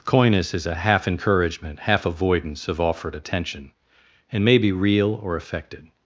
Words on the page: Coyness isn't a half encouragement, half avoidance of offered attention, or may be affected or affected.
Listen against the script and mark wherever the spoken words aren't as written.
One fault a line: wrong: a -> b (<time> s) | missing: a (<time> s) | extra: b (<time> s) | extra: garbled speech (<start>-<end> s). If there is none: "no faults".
wrong: isn't -> is (0.5 s)
wrong: or -> and (4.3 s)
wrong: affected -> real (4.7 s)